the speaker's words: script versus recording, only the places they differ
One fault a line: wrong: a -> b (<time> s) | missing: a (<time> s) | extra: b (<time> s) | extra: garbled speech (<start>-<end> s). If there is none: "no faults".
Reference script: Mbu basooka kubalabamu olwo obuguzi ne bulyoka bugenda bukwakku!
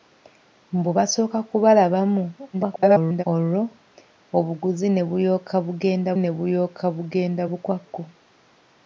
extra: garbled speech (2.5-3.2 s)
extra: ne bulyoka bugenda (6.2 s)